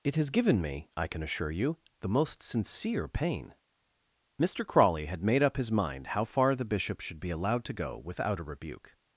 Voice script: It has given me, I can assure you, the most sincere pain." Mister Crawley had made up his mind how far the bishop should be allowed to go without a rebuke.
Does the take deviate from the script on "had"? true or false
false